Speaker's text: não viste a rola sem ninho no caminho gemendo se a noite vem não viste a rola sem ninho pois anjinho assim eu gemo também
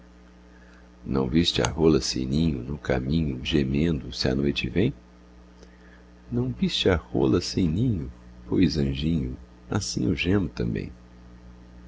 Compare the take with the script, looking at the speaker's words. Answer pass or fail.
pass